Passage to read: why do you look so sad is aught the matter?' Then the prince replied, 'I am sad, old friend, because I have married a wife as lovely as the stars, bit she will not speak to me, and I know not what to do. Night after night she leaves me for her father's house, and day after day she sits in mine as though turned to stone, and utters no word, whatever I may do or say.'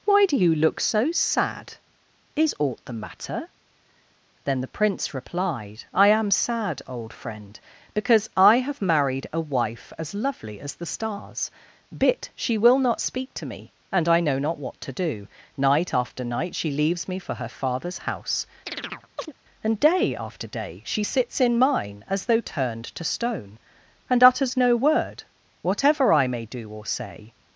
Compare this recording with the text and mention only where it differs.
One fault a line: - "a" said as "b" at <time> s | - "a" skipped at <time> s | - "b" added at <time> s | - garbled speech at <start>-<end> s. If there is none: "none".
none